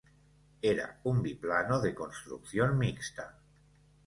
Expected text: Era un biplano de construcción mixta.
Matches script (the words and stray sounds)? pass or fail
pass